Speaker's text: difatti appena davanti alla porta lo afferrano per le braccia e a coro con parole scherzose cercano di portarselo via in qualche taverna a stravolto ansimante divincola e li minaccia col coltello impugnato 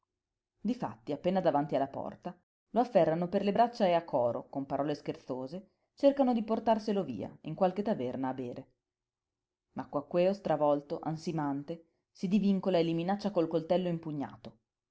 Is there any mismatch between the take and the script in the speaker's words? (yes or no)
yes